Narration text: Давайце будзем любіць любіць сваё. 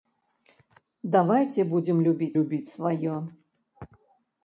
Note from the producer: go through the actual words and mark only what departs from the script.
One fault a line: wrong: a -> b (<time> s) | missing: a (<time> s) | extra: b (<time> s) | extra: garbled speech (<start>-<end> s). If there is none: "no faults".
no faults